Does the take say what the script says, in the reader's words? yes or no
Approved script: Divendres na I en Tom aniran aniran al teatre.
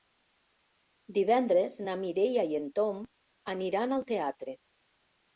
no